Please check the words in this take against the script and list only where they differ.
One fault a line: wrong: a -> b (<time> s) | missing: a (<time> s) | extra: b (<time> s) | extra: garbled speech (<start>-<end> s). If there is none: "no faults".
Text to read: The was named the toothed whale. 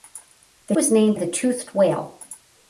no faults